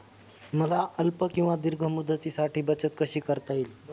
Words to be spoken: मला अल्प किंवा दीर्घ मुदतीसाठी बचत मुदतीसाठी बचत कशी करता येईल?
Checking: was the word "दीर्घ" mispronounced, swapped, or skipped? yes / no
no